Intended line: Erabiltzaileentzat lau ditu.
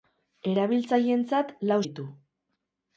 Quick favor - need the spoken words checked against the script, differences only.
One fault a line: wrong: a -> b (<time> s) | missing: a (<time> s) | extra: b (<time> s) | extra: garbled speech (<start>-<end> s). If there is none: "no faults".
no faults